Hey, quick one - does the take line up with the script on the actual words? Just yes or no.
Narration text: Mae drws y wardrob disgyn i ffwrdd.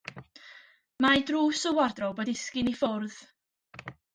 yes